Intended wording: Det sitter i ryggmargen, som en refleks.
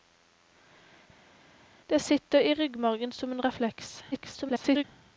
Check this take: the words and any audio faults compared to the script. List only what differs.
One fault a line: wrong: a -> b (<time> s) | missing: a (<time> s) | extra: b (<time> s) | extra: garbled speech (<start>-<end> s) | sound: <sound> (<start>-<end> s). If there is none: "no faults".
extra: garbled speech (4.1-4.8 s)